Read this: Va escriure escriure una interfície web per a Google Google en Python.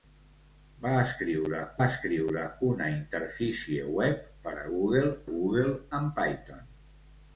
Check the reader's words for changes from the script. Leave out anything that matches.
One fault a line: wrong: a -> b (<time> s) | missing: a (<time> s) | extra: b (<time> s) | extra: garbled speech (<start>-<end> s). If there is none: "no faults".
no faults